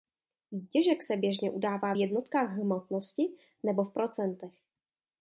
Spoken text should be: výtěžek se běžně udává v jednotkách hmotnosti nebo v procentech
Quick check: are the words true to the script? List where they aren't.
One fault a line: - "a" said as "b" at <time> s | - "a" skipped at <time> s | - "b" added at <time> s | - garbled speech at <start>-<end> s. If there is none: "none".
none